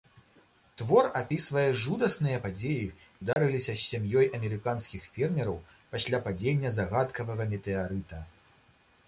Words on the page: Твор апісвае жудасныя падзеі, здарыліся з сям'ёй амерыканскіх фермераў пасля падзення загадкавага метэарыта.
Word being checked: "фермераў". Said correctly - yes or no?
yes